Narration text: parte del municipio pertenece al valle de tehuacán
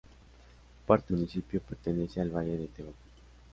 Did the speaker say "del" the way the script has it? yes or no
no